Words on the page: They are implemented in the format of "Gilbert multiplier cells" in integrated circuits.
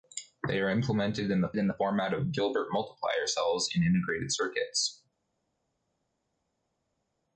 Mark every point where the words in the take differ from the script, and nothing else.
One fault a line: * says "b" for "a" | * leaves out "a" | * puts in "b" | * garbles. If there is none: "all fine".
* puts in "in the"